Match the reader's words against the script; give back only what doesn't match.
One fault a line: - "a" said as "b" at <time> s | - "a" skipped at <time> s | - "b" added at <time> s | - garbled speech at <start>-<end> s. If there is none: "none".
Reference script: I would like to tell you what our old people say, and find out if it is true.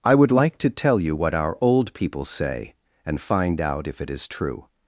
none